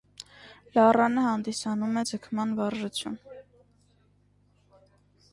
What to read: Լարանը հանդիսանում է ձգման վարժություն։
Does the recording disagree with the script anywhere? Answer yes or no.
no